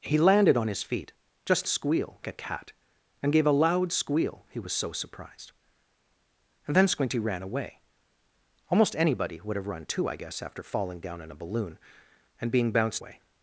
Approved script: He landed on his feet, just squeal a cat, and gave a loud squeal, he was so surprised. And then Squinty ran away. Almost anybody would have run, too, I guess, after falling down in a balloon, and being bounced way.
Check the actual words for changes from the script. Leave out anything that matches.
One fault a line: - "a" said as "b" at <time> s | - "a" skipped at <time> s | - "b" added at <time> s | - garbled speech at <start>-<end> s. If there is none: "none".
none